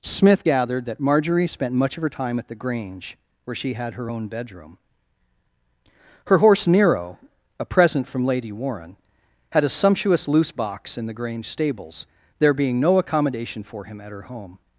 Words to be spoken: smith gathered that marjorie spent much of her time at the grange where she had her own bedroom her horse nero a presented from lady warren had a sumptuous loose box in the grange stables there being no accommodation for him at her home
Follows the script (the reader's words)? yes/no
no